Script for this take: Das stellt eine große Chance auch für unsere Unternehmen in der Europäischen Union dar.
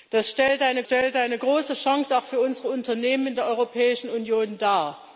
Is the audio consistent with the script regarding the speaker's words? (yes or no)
no